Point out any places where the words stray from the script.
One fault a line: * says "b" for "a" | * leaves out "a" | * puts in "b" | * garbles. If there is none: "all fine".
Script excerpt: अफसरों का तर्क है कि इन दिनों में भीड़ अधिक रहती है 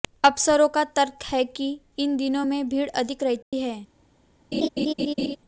all fine